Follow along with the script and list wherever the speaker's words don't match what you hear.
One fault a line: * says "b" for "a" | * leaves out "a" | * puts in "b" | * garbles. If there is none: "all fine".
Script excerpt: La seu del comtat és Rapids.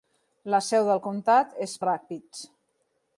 all fine